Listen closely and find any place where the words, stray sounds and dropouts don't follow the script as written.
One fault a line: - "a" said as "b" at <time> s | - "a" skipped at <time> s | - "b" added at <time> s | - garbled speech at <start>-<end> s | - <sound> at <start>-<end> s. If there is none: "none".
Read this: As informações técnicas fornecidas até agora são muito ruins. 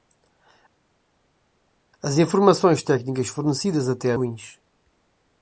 - "agora são muito" skipped at 4.1 s